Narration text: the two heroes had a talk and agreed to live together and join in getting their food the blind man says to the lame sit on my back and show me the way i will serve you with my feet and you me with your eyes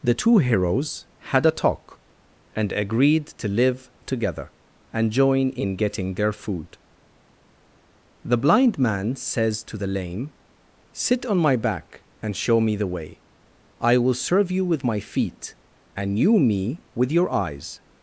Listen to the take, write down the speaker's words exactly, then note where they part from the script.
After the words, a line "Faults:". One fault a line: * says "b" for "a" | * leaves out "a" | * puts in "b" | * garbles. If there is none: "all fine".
the two heroes had a talk and agreed to live together and join in getting their food the blind man says to the lame sit on my back and show me the way i will serve you with my feet and you me with your eyes
Faults:
all fine